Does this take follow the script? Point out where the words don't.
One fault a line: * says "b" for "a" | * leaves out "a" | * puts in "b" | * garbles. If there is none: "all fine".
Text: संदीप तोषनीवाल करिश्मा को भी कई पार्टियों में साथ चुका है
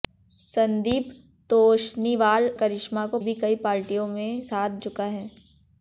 all fine